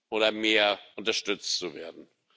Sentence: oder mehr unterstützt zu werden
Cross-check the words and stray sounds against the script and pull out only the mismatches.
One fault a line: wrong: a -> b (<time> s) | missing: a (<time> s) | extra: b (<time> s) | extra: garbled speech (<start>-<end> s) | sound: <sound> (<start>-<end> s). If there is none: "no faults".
no faults